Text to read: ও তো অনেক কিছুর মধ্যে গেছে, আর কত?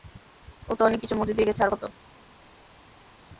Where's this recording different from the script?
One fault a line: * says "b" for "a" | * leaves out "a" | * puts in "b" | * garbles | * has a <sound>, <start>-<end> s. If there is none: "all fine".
* puts in "দিয়ে"